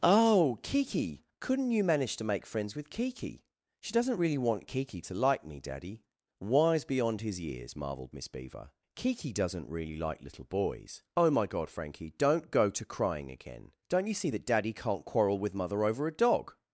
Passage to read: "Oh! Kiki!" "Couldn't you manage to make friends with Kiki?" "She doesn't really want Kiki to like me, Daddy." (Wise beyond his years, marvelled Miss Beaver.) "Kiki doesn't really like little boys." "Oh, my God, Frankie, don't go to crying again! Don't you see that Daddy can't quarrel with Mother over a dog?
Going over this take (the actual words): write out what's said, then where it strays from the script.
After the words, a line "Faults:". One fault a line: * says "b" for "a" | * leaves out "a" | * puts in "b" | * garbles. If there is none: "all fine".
"Oh! Kiki!" "Couldn't you manage to make friends with Kiki?" "She doesn't really want Kiki to like me, Daddy." (Wise beyond his years, marvelled Miss Beaver.) "Kiki doesn't really like little boys." "Oh, my God, Frankie, don't go to crying again! Don't you see that Daddy can't quarrel with Mother over a dog?
Faults:
all fine